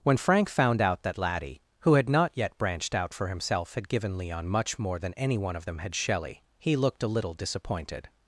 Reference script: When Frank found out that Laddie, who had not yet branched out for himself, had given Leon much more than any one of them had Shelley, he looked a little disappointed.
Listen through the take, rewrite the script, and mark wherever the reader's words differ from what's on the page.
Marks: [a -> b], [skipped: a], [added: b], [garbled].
When Frank found out that Laddie, who had not yet branched out for himself, had given Leon much more than any one of them had Shelley, he looked a little disappointed.